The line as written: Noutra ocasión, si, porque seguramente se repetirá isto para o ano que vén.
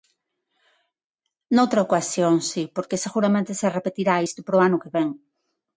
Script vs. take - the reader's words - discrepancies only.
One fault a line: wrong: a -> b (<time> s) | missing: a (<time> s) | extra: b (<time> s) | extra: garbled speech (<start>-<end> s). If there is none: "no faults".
no faults